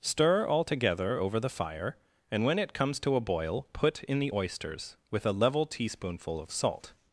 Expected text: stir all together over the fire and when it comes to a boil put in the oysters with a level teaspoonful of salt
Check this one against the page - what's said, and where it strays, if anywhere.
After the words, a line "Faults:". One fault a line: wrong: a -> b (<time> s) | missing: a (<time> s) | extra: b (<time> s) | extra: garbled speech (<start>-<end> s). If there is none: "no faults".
stir all together over the fire and when it comes to a boil put in the oysters with a level teaspoonful of salt
Faults:
no faults